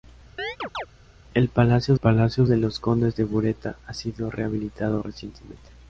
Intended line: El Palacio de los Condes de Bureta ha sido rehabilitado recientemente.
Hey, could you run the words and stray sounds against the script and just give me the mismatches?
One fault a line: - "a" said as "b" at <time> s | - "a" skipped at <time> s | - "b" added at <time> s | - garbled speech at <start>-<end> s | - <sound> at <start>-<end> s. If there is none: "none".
- chirp at 0.4-0.9 s
- "Palacio" added at 1.9 s